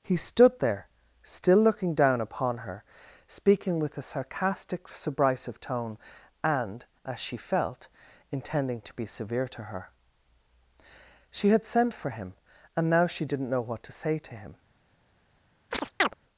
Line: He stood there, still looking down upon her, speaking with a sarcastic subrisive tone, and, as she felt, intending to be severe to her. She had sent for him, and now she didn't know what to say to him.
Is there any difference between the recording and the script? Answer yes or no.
no